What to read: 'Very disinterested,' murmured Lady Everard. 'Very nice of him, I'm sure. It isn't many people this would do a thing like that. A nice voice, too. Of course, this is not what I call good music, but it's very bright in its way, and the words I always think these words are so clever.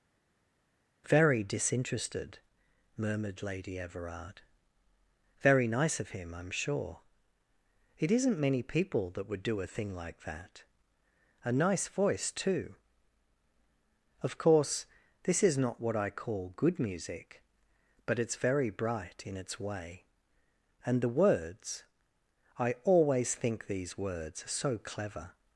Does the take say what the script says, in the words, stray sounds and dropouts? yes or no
no